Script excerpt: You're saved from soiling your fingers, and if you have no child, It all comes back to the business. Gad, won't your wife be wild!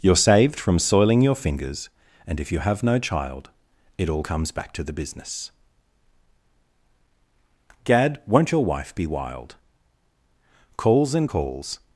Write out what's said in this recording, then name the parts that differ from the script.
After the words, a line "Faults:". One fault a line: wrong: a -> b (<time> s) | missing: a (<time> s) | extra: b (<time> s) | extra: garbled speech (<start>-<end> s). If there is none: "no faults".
You're saved from soiling your fingers, and if you have no child, It all comes back to the business. Gad, won't your wife be wild! Calls and calls
Faults:
extra: Calls and calls (10.8 s)